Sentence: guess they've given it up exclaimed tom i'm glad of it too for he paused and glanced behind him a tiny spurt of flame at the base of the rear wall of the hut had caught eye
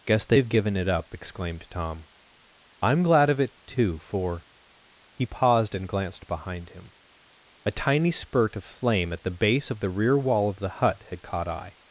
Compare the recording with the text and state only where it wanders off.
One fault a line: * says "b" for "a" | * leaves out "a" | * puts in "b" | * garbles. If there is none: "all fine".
all fine